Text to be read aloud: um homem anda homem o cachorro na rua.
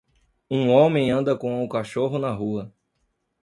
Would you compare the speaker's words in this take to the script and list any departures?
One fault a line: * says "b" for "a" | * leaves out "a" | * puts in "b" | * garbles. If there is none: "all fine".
* says "com" for "homem"